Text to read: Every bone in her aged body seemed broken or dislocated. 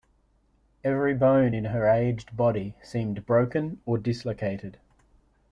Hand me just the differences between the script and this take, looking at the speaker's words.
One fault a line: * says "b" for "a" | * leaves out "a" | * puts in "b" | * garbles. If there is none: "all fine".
all fine